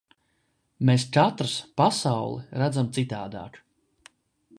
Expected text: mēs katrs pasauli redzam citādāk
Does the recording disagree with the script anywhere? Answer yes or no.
no